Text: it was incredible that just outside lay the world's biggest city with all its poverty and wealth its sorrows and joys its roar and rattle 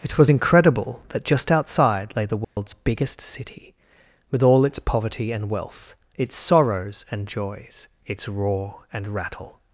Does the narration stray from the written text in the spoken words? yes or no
no